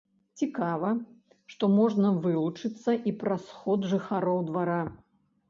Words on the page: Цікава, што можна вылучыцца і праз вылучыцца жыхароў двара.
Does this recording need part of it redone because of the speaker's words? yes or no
yes